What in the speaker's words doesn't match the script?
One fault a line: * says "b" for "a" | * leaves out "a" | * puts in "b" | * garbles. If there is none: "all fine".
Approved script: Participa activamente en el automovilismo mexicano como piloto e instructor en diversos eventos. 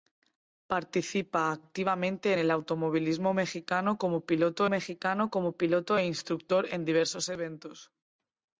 * leaves out "en"
* puts in "mexicano como piloto"